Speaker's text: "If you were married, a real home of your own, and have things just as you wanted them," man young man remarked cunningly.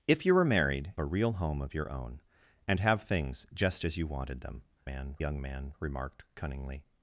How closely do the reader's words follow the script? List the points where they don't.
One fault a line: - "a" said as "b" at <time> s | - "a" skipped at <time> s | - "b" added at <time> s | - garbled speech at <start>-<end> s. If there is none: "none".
none